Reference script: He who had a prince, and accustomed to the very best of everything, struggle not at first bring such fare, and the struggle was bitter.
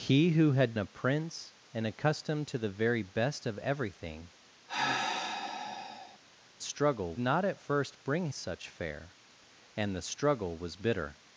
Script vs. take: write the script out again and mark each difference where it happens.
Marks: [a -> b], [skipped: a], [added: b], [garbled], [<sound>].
He who had a prince, and accustomed to the very best of everything, [sigh] struggle not at first bring such fare, and the struggle was bitter.